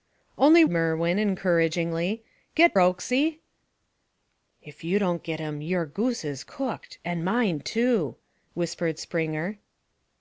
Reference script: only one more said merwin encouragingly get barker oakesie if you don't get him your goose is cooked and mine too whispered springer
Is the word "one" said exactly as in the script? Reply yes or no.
no